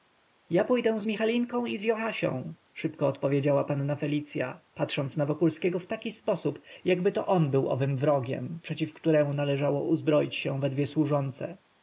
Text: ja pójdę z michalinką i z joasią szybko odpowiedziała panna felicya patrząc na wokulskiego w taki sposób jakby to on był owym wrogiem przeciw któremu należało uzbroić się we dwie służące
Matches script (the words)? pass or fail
pass